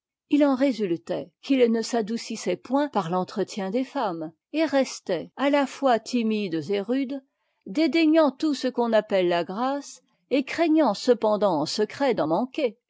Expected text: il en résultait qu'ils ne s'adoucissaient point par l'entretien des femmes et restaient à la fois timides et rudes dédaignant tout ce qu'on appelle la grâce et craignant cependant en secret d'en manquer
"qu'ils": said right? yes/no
yes